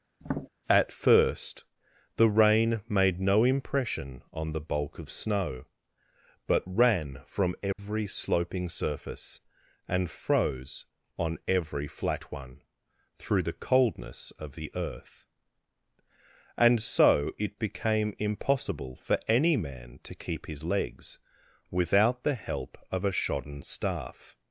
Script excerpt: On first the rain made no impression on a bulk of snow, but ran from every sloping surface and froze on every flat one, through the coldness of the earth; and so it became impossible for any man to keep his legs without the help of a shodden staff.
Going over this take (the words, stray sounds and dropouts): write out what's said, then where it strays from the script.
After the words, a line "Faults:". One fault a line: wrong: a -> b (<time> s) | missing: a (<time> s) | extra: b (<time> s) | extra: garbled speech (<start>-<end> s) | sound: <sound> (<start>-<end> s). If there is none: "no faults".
At first the rain made no impression on the bulk of snow, but ran from every sloping surface and froze on every flat one, through the coldness of the earth; and so it became impossible for any man to keep his legs without the help of a shodden staff.
Faults:
sound: tap (0.2-0.5 s)
wrong: On -> At (0.7 s)
wrong: a -> the (4.5 s)
sound: dropout (7.7-7.8 s)